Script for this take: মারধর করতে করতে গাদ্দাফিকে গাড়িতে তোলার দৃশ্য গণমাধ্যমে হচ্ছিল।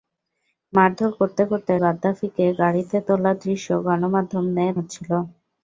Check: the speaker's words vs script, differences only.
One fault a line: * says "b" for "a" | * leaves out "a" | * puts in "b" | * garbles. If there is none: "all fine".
all fine